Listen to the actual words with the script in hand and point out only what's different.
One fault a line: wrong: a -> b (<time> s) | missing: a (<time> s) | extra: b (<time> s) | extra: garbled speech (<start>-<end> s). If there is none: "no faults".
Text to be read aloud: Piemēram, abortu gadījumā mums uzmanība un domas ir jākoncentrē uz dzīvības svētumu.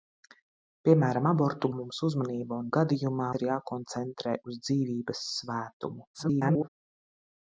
missing: gadījumā (1.7 s)
wrong: domas -> gadījumā (2.8 s)
extra: garbled speech (6.1-6.7 s)